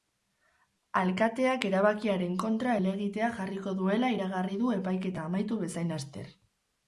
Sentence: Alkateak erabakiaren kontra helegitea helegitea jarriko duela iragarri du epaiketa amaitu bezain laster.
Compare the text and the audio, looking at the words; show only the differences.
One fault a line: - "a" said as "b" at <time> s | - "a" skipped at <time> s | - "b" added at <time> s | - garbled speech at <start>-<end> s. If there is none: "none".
- "helegitea" skipped at 3.3 s